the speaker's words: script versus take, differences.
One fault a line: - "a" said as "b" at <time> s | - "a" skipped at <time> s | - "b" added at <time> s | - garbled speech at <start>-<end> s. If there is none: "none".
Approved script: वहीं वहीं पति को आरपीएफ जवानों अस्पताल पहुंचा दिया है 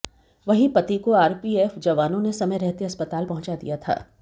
- "वहीं" skipped at 0.7 s
- "ने समय रहते" added at 2.2 s
- "है" said as "था" at 3.8 s